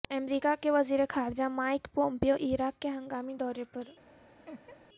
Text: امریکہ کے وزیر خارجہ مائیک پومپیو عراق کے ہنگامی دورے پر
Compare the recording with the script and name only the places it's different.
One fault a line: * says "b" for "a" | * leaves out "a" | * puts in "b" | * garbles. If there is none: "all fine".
all fine